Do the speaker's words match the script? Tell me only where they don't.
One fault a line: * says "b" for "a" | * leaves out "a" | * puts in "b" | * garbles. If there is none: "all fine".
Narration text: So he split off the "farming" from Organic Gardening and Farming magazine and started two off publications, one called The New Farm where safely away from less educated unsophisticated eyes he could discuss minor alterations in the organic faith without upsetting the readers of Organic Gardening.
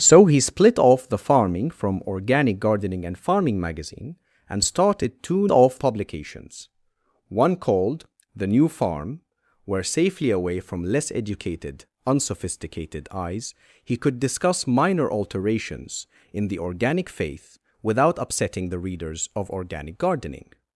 all fine